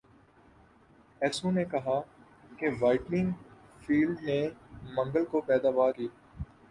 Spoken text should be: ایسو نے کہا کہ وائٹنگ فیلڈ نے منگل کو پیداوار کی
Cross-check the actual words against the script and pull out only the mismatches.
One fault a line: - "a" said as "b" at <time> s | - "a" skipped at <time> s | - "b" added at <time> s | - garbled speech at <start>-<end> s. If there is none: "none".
none